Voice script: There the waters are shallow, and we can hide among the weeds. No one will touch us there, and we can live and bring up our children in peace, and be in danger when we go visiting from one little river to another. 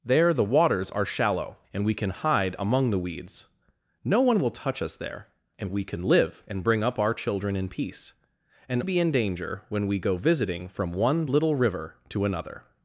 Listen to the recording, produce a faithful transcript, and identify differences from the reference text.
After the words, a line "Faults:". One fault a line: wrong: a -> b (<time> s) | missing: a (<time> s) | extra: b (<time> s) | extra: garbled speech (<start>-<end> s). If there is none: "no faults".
There the waters are shallow, and we can hide among the weeds. No one will touch us there, and we can live and bring up our children in peace, and be in danger when we go visiting from one little river to another.
Faults:
no faults